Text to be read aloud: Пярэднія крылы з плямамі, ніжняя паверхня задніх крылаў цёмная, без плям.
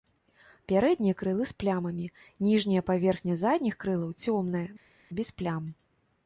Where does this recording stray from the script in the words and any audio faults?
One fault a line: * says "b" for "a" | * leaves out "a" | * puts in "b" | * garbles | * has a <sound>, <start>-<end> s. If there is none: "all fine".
all fine